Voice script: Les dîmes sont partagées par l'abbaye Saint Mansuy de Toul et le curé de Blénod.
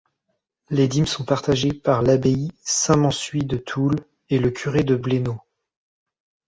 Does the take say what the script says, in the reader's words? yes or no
yes